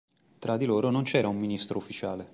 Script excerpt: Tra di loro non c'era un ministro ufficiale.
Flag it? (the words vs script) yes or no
no